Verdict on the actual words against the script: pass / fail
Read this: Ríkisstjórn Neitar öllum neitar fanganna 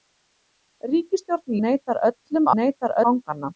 pass